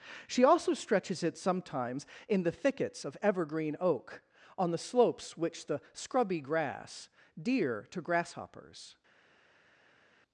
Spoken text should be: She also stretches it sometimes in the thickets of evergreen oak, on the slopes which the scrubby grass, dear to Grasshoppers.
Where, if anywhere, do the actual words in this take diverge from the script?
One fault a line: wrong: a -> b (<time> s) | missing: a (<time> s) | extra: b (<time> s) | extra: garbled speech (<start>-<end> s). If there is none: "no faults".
no faults